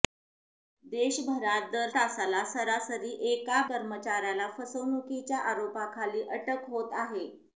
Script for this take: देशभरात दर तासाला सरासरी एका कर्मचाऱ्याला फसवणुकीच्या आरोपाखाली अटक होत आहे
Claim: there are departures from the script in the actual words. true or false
false